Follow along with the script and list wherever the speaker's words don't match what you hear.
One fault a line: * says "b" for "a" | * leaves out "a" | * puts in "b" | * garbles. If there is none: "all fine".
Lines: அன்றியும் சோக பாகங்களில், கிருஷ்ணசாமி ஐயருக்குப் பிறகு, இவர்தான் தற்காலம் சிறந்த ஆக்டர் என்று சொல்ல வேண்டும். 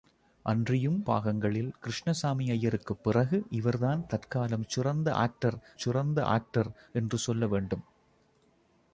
* leaves out "சோக"
* puts in "சிறந்த ஆக்டர்"